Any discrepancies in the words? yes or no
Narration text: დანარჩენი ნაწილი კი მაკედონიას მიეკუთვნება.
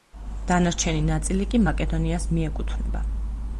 no